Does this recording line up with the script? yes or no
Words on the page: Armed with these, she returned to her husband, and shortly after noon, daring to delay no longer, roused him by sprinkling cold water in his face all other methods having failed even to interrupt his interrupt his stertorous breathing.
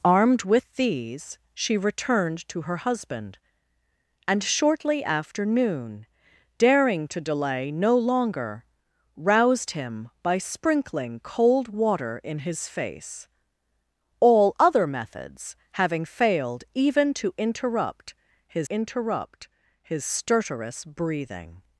yes